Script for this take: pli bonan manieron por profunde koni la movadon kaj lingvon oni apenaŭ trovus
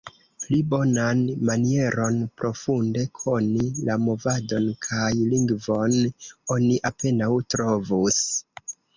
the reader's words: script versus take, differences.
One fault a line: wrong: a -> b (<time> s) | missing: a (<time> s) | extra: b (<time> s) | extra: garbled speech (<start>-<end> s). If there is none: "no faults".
missing: por (2.2 s)